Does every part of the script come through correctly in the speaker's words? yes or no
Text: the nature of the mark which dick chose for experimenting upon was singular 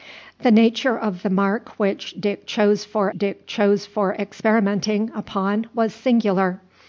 no